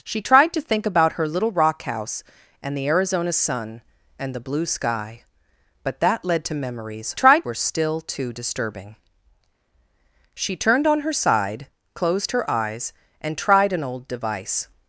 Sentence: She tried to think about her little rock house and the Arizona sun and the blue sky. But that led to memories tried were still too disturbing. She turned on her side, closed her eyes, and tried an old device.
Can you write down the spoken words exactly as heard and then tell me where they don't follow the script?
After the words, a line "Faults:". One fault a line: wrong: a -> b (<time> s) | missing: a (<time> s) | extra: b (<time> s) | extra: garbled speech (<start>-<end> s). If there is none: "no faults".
She tried to think about her little rock house and the Arizona sun and the blue sky. But that led to memories tried were still too disturbing. She turned on her side, closed her eyes, and tried an old device.
Faults:
no faults